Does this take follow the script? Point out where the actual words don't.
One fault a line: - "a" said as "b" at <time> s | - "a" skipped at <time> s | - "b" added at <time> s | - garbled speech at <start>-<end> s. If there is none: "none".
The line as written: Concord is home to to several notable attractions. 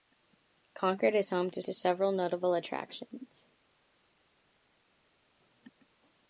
none